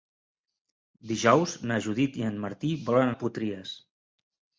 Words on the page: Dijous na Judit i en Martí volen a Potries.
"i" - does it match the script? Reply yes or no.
yes